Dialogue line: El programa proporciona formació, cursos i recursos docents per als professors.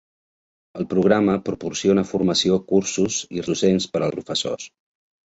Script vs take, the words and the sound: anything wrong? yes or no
yes